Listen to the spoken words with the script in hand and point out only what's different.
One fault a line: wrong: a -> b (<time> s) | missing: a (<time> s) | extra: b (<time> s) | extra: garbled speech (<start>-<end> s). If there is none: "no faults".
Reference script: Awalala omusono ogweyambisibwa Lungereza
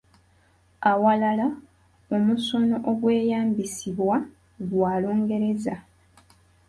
extra: gwa (4.7 s)